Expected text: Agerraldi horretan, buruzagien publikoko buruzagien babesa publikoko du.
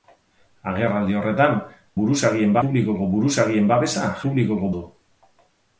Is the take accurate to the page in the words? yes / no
yes